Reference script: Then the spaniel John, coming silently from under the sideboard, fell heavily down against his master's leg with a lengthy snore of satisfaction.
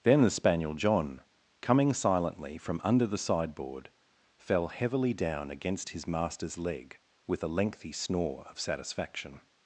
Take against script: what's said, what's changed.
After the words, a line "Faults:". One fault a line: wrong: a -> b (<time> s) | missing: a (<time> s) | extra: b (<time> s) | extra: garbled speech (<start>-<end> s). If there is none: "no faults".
Then the spaniel John, coming silently from under the sideboard, fell heavily down against his master's leg with a lengthy snore of satisfaction.
Faults:
no faults